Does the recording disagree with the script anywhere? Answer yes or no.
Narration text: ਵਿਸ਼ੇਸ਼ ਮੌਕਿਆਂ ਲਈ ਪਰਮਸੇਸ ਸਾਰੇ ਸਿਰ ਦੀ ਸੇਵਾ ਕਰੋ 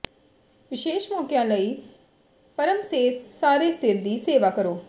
no